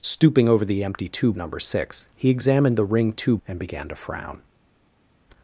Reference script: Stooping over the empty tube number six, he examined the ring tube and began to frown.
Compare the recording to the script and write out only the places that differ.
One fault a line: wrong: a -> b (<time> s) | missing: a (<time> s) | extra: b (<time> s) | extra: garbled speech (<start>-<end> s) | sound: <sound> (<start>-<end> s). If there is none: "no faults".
no faults